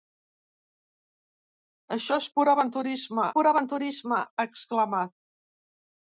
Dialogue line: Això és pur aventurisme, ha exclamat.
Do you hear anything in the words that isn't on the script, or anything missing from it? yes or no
yes